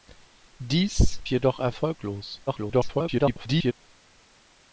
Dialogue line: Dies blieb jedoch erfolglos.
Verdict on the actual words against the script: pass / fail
fail